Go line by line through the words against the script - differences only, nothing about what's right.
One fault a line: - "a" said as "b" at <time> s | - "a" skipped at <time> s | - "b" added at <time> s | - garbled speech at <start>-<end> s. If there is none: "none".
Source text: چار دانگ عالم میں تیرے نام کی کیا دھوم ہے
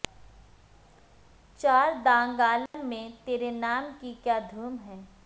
none